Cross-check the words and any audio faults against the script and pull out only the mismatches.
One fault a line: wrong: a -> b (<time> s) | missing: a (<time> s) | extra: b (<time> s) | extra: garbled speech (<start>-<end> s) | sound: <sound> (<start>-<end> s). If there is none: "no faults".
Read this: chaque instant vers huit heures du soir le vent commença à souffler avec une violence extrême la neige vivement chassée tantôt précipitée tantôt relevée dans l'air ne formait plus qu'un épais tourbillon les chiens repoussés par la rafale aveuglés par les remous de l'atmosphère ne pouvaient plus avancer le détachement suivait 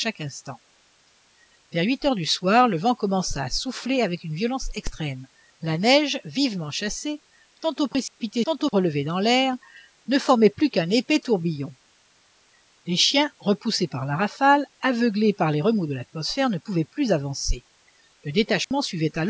sound: dropout (8.1-8.2 s)
sound: dropout (18.6-18.7 s)